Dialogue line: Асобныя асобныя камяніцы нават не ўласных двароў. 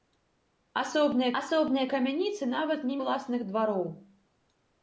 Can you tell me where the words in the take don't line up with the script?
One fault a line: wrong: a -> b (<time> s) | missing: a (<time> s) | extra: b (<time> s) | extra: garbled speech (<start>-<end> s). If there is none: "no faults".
no faults